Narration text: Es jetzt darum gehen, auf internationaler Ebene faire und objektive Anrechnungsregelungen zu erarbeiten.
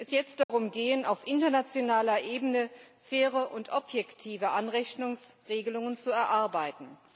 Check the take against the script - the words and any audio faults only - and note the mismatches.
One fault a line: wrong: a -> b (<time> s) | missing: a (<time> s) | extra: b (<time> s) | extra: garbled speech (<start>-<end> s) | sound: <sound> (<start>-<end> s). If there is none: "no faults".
sound: dropout (0.4-0.5 s)